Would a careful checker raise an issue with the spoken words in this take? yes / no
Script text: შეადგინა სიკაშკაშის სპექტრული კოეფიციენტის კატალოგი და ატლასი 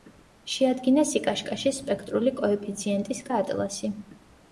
yes